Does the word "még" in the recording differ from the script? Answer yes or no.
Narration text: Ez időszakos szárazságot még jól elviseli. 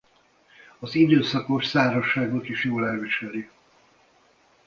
yes